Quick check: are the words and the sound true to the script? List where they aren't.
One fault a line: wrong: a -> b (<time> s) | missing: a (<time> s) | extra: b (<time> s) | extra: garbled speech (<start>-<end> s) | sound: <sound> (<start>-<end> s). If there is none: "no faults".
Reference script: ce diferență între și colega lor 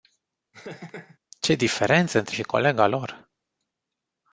sound: laugh (0.5-1.2 s)